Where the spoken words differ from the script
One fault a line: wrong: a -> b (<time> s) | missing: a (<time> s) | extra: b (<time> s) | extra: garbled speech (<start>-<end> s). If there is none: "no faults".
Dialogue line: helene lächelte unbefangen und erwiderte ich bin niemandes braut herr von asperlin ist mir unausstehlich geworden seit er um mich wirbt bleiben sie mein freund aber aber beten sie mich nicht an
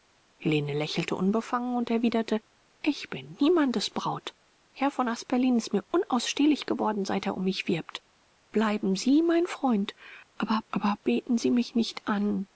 no faults